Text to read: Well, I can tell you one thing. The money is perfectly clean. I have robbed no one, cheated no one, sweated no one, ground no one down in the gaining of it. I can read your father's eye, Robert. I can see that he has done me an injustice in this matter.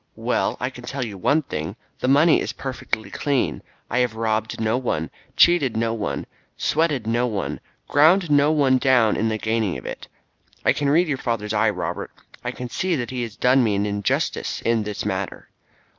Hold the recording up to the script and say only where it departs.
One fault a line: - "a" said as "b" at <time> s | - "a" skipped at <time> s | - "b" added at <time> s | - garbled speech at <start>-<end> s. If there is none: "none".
none